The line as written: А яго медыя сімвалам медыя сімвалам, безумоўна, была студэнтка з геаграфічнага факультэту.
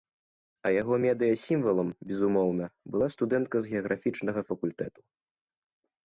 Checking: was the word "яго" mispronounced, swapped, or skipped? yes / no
no